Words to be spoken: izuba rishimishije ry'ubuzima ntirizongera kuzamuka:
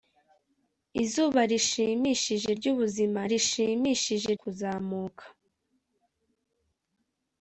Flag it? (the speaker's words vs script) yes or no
yes